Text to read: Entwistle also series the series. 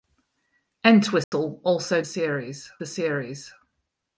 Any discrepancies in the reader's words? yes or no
no